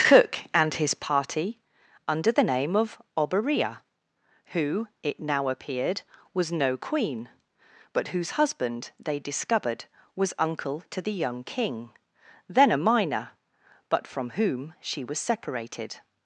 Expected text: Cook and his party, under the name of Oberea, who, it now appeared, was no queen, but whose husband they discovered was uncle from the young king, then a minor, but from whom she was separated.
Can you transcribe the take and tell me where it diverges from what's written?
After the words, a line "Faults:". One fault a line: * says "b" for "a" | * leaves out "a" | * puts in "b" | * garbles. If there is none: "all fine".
Cook and his party, under the name of Oberea, who, it now appeared, was no queen, but whose husband they discovered was uncle to the young king, then a minor, but from whom she was separated.
Faults:
* says "to" for "from"